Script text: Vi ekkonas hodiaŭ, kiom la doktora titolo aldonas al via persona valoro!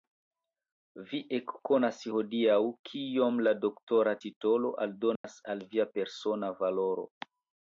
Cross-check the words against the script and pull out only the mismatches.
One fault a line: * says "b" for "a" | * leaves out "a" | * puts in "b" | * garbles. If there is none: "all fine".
all fine